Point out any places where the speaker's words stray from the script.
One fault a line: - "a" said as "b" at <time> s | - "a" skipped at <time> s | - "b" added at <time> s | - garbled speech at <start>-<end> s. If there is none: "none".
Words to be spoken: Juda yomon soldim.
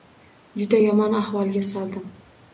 - "ahvolga" added at 1.2 s